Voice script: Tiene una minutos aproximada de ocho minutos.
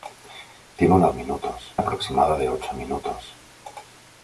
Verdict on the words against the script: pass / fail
pass